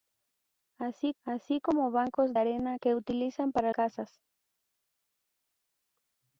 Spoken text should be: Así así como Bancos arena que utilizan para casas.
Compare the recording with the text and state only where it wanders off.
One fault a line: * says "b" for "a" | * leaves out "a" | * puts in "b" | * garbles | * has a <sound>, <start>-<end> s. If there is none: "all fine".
all fine